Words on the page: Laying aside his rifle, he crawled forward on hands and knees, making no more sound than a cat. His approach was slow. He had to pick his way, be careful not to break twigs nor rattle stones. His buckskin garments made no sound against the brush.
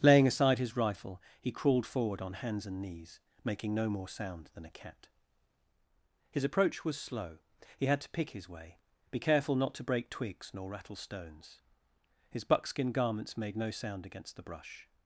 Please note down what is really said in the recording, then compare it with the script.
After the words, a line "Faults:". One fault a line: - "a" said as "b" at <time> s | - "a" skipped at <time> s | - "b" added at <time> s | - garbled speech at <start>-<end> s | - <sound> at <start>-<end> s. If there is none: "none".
Laying aside his rifle, he crawled forward on hands and knees, making no more sound than a cat. His approach was slow. He had to pick his way, be careful not to break twigs nor rattle stones. His buckskin garments made no sound against the brush.
Faults:
none